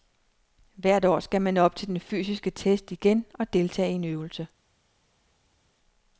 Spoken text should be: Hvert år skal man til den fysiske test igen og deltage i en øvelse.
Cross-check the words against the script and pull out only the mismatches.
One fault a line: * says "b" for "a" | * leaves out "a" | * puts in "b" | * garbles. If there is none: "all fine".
* puts in "op"